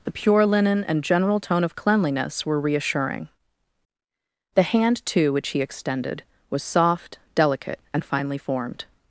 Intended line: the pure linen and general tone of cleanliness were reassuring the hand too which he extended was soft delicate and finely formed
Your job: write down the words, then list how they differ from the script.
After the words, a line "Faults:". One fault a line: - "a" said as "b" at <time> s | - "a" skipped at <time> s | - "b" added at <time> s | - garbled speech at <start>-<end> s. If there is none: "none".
the pure linen and general tone of cleanliness were reassuring the hand too which he extended was soft delicate and finely formed
Faults:
none